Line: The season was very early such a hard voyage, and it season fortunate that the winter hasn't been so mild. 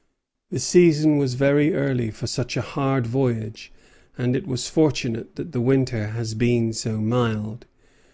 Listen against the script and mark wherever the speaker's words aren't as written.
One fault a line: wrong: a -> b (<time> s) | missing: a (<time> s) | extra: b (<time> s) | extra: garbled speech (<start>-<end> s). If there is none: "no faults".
extra: for (2.1 s)
wrong: season -> was (4.5 s)
wrong: hasn't -> has (6.1 s)